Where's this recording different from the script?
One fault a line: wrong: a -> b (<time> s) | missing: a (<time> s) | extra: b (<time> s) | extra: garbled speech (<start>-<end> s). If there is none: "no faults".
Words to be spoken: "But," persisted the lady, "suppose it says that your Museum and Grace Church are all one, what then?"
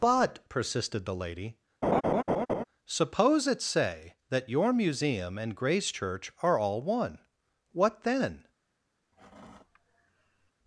wrong: says -> say (3.6 s)